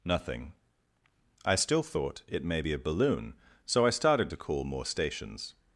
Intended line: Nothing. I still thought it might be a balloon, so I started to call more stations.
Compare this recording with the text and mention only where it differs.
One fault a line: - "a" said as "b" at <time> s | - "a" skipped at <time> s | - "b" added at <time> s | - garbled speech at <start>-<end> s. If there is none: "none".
- "might" said as "may" at 2.4 s